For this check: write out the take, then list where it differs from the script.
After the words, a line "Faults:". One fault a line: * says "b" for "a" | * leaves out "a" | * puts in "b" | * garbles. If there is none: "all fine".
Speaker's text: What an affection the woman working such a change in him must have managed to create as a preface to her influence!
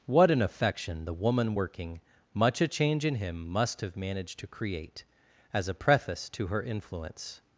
What an affection the woman working much a change in him must have managed to create as a preface to her influence!
Faults:
* says "much" for "such"